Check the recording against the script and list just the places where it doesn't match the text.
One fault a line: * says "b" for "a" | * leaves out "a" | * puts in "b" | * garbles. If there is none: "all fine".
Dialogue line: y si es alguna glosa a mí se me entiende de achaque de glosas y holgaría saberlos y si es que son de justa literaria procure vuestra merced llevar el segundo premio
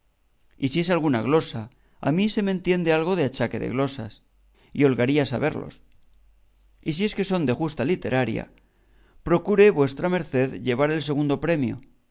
* puts in "algo"